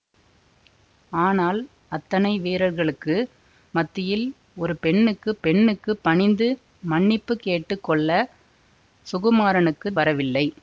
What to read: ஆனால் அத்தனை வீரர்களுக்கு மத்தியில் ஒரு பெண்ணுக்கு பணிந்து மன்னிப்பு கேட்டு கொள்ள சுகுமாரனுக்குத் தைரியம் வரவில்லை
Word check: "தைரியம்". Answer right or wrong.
wrong